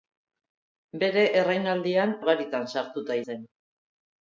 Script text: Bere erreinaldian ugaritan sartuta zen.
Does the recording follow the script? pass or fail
pass